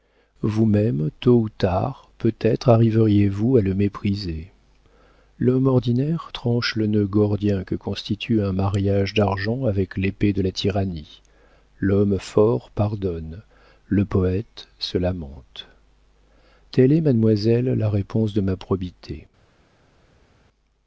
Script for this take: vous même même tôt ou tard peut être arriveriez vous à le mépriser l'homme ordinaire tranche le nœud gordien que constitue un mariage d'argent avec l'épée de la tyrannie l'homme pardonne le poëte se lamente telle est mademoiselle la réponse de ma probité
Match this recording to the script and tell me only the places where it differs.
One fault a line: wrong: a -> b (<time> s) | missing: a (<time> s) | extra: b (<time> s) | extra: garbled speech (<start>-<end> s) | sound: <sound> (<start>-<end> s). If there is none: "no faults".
missing: même (1.1 s)
extra: fort (12.2 s)